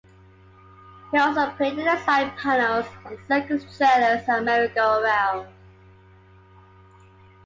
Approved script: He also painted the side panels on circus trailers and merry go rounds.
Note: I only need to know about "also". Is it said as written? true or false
true